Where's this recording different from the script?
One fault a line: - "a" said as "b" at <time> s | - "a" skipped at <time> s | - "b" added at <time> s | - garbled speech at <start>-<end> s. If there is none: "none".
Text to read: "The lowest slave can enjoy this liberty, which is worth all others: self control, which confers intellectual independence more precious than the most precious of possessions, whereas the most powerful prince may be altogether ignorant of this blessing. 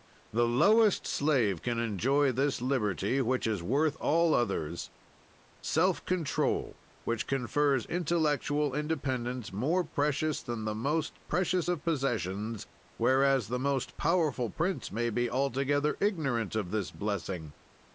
none